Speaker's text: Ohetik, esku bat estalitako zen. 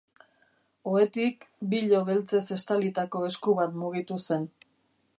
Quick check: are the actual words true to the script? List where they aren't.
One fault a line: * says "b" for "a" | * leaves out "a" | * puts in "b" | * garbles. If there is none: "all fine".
* puts in "bilo beltzez estalitako"
* says "mugitu" for "estalitako"